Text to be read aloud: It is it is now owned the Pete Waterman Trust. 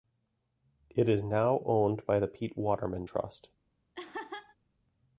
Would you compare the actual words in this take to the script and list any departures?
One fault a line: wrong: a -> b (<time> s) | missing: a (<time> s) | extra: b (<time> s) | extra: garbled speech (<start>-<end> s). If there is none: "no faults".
missing: it is (1.2 s)
extra: by (2.1 s)